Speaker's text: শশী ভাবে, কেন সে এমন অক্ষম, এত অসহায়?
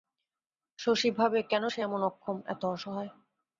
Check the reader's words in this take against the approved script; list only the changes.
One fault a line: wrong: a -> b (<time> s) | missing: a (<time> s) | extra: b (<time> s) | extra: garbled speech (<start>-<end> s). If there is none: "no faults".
no faults